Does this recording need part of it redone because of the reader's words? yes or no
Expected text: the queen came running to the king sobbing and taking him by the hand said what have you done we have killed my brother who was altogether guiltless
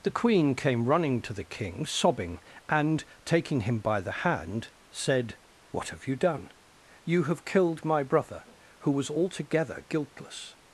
yes